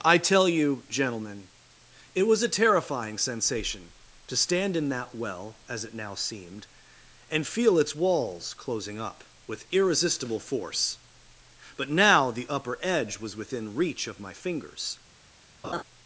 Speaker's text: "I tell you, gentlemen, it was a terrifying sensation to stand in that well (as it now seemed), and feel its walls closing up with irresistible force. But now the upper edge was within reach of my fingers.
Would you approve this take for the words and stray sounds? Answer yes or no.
no